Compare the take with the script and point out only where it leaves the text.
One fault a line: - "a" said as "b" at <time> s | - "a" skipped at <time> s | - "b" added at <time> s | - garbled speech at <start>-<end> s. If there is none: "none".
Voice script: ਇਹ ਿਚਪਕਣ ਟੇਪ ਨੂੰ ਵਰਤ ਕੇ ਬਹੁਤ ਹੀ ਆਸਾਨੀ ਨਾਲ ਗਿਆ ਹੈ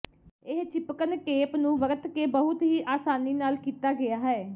- "ਕੀਤਾ" added at 3.6 s